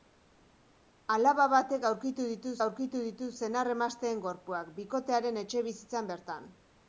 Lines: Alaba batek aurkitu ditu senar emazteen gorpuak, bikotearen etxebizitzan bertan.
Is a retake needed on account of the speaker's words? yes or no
yes